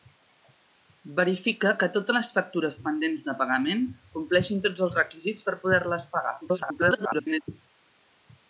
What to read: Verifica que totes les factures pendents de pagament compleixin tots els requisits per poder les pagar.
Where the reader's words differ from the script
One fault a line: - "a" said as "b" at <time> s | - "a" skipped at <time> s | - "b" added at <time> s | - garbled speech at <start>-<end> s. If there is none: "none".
- garbled speech at 6.4-7.4 s